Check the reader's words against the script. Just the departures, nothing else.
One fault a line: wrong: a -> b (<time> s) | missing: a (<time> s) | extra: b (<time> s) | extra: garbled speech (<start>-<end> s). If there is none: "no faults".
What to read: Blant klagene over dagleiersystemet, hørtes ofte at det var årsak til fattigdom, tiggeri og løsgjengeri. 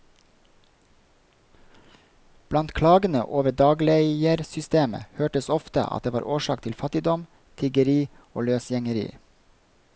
no faults